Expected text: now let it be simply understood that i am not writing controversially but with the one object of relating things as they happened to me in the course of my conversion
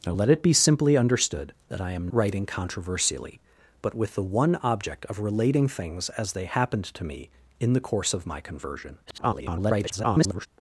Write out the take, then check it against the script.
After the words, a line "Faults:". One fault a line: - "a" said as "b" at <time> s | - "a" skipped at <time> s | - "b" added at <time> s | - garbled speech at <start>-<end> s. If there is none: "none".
now let it be simply understood that i am writing controversially but with the one object of relating things as they happened to me in the course of my conversion [garbled]
Faults:
- "not" skipped at 2.1 s
- garbled speech at 9.1-10.5 s